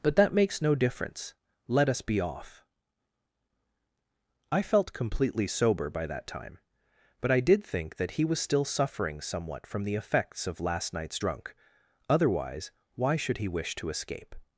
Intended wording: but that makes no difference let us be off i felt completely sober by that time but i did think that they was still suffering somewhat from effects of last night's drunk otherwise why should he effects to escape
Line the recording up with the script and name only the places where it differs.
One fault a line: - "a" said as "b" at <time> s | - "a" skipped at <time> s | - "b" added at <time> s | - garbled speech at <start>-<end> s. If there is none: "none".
- "they" said as "he" at 8.1 s
- "the" added at 9.8 s
- "effects" said as "wish" at 13.5 s